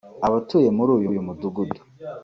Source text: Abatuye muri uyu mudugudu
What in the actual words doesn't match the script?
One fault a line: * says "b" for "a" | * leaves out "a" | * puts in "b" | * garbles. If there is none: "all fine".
* puts in "uyu"